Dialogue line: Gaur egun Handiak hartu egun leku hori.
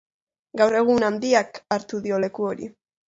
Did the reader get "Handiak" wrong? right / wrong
right